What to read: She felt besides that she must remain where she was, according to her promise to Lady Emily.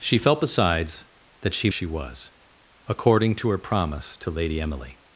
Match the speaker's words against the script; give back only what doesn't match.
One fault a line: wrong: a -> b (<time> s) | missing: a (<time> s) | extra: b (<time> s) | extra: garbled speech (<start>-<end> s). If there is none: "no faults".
missing: must remain where (1.7 s)